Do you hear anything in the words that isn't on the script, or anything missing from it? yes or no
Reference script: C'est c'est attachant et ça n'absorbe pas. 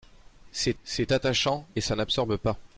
no